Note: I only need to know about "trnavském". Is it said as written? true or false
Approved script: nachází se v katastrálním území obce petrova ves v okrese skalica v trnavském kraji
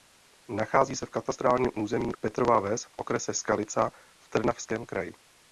true